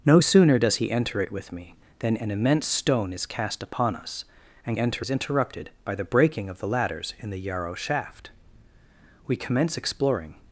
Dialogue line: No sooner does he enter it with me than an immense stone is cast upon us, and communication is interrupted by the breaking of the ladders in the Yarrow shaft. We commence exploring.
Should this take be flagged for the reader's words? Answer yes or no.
yes